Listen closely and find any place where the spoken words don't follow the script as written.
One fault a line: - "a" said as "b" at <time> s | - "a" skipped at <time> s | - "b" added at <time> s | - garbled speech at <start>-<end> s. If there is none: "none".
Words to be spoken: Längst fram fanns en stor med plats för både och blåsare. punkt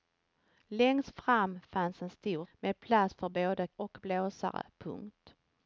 none